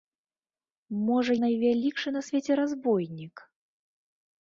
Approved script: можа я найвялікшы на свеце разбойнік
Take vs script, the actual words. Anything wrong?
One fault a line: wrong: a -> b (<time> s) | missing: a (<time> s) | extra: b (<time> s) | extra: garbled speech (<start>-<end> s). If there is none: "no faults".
missing: я (1.3 s)